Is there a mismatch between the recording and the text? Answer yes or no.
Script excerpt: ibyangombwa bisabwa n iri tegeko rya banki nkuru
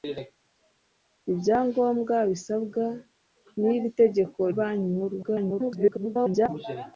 yes